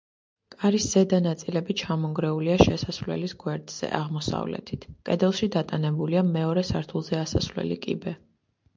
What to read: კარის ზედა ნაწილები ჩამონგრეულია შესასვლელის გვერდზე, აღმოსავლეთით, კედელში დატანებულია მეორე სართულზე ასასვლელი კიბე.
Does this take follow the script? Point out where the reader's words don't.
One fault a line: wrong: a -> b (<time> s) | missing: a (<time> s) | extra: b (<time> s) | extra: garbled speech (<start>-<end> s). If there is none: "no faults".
no faults